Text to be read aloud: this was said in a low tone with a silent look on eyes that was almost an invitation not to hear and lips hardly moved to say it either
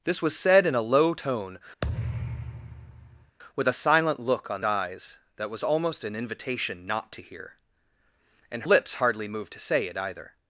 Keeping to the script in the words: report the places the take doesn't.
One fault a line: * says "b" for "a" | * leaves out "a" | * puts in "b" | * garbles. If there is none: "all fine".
all fine